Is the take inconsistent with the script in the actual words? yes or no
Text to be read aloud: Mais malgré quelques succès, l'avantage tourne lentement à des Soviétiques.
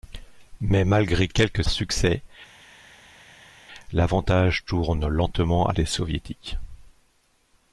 no